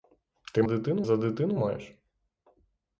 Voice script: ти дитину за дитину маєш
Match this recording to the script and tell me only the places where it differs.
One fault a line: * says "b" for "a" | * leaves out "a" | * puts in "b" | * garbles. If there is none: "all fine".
all fine